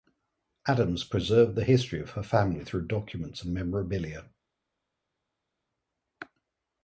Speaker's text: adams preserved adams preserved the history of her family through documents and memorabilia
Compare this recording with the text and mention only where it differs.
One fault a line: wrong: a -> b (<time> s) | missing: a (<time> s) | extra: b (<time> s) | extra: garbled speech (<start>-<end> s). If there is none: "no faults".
missing: adams preserved (1.6 s)